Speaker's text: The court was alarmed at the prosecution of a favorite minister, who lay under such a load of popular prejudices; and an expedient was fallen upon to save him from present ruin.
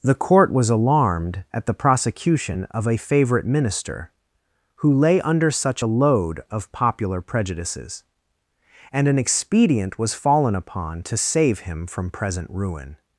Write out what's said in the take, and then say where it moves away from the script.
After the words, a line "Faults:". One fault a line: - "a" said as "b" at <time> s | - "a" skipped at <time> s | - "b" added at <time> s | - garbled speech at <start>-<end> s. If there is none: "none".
The court was alarmed at the prosecution of a favorite minister, who lay under such a load of popular prejudices; and an expedient was fallen upon to save him from present ruin.
Faults:
none